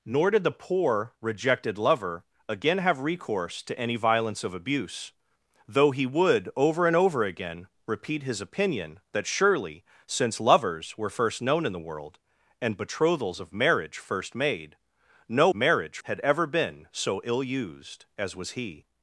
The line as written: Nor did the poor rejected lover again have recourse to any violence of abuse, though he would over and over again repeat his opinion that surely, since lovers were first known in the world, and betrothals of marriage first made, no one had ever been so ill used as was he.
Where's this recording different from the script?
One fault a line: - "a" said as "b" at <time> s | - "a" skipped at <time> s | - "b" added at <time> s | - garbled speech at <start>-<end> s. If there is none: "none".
- "one" said as "marriage" at 15.5 s